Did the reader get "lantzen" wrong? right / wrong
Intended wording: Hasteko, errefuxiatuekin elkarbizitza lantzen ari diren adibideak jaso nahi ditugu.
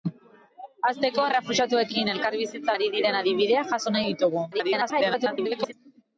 wrong